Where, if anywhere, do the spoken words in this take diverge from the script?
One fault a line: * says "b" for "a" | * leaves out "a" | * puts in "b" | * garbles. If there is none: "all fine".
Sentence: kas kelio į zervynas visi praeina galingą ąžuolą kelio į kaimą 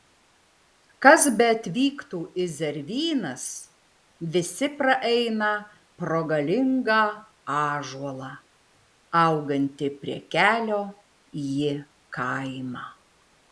* says "beatvyktų" for "kelio"
* puts in "pro"
* puts in "augantį prie"